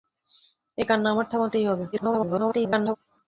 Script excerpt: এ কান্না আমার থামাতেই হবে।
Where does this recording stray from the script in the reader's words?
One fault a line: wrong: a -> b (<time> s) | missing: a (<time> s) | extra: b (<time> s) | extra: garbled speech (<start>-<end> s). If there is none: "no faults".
extra: garbled speech (1.9-3.0 s)